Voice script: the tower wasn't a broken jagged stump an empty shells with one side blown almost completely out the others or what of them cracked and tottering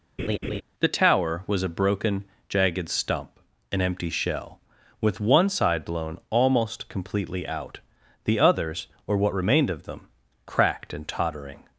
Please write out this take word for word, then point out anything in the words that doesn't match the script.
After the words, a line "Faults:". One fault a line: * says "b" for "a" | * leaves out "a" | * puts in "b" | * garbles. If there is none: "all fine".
the tower was a broken jagged stump an empty shell with one side blown almost completely out the others or what remained of them cracked and tottering
Faults:
* says "was" for "wasn't"
* says "shell" for "shells"
* puts in "remained"